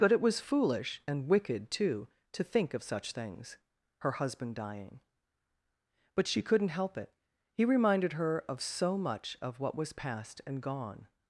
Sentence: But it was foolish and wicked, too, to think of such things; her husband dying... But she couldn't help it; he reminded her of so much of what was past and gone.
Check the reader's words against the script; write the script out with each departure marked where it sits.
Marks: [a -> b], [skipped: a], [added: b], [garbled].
But it was foolish and wicked, too, to think of such things; her husband dying... But she couldn't help it; he reminded her of so much of what was past and gone.